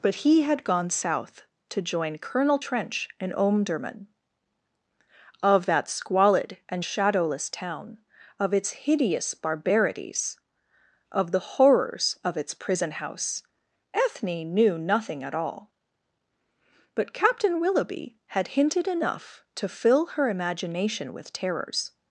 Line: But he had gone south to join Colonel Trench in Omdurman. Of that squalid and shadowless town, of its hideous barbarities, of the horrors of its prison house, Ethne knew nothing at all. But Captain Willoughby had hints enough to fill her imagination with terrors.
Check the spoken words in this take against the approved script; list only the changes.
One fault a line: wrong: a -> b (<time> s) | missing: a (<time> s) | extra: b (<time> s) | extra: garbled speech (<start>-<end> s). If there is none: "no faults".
wrong: hints -> hinted (18.5 s)